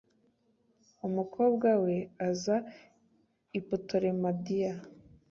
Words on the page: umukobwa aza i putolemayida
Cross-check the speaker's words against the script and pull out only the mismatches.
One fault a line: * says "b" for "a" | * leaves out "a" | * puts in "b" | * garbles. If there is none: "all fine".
* puts in "we"